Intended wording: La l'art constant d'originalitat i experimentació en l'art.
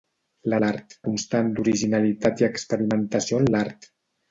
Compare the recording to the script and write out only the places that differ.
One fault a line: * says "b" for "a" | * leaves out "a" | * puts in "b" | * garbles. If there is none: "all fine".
all fine